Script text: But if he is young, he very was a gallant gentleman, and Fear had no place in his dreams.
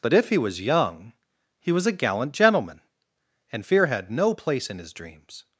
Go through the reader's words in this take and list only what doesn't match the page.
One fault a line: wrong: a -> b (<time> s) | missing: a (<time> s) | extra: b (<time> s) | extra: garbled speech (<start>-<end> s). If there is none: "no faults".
wrong: is -> was (0.4 s)
missing: very (1.7 s)